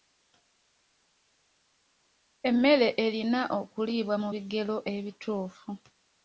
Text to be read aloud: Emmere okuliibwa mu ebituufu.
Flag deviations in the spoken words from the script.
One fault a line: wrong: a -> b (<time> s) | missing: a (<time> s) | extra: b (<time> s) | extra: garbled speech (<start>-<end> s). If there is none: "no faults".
extra: erina (3.0 s)
extra: bigero (4.3 s)